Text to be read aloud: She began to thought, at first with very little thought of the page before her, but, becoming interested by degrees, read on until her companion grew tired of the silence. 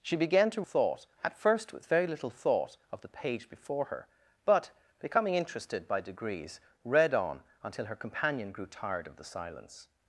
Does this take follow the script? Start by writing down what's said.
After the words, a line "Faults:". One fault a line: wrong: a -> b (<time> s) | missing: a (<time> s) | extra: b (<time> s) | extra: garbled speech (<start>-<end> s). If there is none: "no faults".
She began to thought, at first with very little thought of the page before her, but, becoming interested by degrees, read on until her companion grew tired of the silence.
Faults:
no faults